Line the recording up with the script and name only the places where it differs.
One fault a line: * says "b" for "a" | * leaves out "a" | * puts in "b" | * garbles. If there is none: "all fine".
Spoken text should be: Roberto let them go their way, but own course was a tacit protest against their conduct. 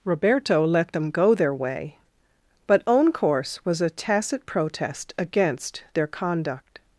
all fine